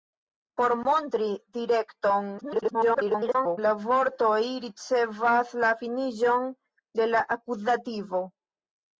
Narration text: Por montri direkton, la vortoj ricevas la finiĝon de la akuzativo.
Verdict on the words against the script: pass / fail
fail